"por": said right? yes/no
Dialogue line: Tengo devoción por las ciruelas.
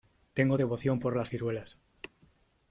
yes